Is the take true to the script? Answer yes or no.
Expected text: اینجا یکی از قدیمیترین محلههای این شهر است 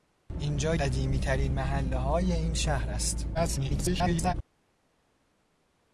no